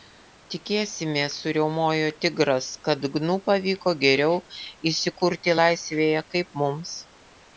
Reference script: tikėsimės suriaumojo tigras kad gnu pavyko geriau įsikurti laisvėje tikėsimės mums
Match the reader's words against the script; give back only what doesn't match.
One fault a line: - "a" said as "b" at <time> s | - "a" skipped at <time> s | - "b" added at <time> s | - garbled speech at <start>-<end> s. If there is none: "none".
- "tikėsimės" said as "kaip" at 6.4 s